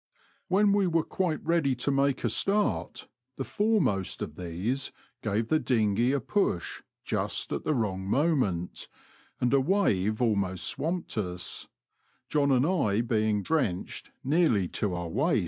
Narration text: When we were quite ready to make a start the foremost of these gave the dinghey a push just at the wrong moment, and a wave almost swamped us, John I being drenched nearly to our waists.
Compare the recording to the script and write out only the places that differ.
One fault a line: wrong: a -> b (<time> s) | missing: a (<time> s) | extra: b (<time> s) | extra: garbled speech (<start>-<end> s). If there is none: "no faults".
extra: and (12.5 s)